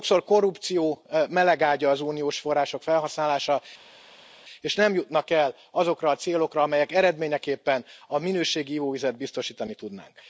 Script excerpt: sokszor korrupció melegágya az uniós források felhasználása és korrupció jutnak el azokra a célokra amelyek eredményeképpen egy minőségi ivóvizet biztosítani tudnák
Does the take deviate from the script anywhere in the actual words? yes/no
yes